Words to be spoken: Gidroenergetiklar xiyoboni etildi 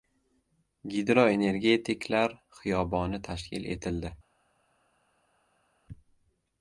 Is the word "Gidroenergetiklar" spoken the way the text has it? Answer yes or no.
yes